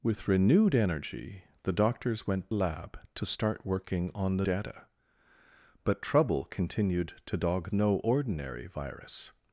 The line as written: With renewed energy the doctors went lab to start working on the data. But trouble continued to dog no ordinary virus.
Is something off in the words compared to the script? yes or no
no